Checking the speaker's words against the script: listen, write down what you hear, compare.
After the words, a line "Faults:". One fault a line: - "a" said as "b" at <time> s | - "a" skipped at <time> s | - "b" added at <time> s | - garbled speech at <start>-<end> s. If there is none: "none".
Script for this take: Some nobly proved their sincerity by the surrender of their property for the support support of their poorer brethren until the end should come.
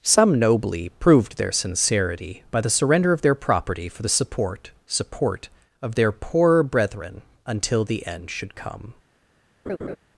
Some nobly proved their sincerity by the surrender of their property for the support support of their poorer brethren until the end should come.
Faults:
none